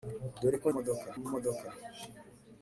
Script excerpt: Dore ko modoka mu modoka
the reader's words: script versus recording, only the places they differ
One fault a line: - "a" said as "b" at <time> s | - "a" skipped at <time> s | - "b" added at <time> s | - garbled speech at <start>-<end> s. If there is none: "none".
none